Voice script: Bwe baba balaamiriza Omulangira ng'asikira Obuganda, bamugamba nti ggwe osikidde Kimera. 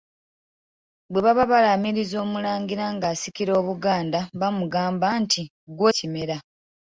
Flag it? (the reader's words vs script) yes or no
yes